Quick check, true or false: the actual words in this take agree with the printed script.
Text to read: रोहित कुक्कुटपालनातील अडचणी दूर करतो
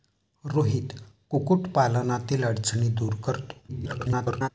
false